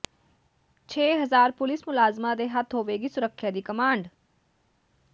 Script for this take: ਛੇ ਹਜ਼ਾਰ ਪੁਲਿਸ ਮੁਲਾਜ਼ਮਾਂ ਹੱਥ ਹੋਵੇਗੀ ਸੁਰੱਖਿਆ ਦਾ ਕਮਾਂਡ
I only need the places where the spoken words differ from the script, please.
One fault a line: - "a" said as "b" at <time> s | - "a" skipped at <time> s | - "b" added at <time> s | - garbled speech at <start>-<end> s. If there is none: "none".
- "ਦੇ" added at 2.4 s
- "ਦਾ" said as "ਦੀ" at 3.5 s